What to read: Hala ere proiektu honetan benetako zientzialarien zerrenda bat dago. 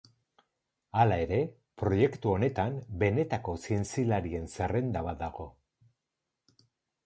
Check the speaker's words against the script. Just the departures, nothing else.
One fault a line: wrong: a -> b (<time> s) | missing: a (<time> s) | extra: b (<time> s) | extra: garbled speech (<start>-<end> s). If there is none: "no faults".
no faults